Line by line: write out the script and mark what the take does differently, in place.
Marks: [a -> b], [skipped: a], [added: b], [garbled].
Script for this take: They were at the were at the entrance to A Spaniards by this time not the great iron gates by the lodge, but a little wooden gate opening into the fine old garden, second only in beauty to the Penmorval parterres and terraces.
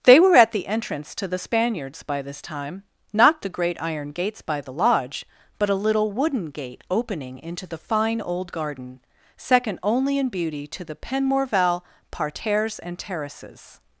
They were at the [skipped: were at the] entrance to [A -> The] Spaniards by this time not the great iron gates by the lodge, but a little wooden gate opening into the fine old garden, second only in beauty to the Penmorval parterres and terraces.